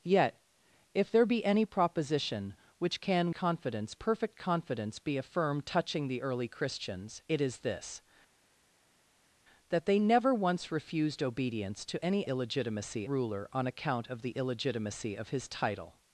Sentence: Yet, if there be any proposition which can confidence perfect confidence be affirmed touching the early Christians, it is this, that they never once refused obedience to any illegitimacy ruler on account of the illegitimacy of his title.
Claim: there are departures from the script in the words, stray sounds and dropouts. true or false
false